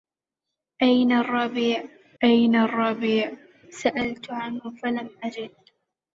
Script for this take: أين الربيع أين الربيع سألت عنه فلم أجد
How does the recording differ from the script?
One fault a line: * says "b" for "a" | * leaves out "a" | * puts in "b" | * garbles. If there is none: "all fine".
all fine